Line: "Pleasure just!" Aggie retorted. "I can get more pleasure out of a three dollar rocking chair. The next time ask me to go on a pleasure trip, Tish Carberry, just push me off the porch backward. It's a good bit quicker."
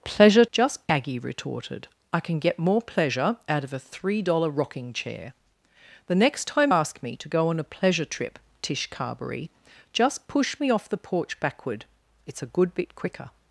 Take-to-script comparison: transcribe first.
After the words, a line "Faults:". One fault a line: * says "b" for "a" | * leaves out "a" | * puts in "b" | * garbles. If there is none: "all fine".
"Pleasure just!" Aggie retorted. "I can get more pleasure out of a three dollar rocking chair. The next time ask me to go on a pleasure trip, Tish Carberry, just push me off the porch backward. It's a good bit quicker."
Faults:
all fine